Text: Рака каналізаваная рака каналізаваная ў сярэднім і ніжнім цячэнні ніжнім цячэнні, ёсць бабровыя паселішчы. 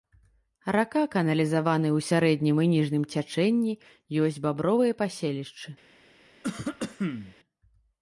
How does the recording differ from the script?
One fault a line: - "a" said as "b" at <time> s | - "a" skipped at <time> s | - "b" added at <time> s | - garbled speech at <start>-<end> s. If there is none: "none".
- "рака каналізаваная" skipped at 1.9 s
- "ніжнім цячэнні" skipped at 3.7 s